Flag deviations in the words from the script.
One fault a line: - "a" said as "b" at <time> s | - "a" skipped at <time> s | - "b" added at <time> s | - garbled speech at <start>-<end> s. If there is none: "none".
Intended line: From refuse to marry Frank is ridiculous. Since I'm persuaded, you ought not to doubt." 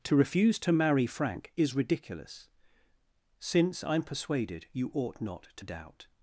- "From" said as "To" at 0.0 s